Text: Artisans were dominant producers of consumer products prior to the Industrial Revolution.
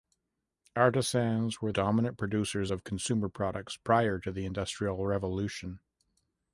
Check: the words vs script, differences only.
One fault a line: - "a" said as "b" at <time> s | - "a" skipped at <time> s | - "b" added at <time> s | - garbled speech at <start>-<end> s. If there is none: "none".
none